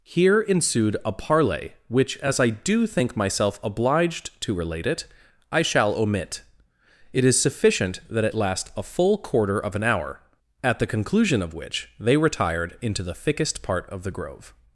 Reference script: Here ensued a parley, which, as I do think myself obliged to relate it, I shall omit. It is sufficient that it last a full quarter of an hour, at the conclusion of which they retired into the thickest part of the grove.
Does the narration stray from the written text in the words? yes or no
no